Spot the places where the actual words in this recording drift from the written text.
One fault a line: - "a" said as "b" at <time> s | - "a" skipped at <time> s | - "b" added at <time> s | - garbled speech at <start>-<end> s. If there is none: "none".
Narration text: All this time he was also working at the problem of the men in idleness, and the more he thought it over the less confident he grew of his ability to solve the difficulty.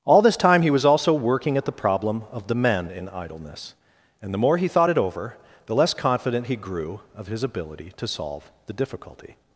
none